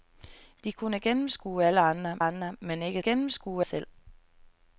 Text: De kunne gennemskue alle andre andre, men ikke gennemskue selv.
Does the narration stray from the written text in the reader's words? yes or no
no